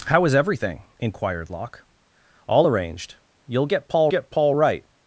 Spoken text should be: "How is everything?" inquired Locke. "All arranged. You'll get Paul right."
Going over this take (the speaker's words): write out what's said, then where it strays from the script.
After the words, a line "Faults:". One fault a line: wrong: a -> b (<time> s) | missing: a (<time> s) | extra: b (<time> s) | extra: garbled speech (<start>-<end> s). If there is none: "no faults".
"How is everything?" inquired Locke. "All arranged. You'll get Paul get Paul right."
Faults:
extra: get Paul (4.1 s)